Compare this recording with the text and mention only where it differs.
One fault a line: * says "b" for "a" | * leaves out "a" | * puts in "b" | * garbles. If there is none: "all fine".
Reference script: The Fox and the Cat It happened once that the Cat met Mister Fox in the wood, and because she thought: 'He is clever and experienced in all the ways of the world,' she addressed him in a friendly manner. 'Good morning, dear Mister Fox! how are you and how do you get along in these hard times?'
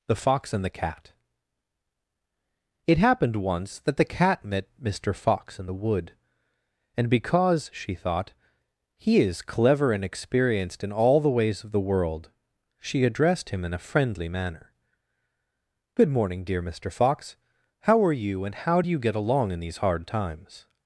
all fine